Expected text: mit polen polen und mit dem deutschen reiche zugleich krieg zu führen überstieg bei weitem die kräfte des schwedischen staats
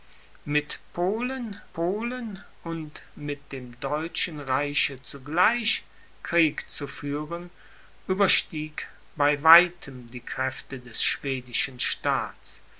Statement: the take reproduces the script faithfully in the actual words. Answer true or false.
true